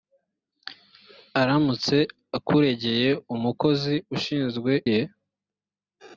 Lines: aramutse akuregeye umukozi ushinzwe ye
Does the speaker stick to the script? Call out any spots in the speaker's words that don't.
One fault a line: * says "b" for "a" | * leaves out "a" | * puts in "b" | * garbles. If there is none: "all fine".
all fine